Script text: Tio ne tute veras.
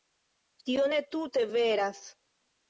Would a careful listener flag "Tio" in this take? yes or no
no